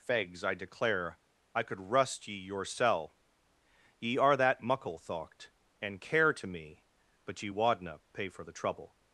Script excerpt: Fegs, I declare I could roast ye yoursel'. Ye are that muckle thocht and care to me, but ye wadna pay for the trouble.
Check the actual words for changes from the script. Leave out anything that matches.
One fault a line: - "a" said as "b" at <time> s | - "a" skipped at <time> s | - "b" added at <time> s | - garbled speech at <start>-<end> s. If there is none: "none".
- "roast" said as "rust" at 1.8 s